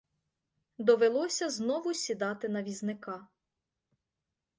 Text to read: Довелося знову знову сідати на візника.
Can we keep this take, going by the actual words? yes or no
no